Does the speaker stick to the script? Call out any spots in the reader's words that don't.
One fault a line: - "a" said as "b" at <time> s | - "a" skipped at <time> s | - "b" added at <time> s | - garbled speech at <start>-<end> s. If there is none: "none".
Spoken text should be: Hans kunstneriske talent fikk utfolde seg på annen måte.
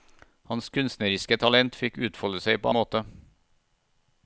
- "annen" skipped at 2.7 s